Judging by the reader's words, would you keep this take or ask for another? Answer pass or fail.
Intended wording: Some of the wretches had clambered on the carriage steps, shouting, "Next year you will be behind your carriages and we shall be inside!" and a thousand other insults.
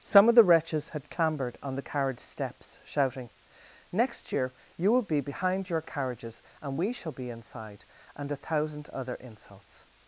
pass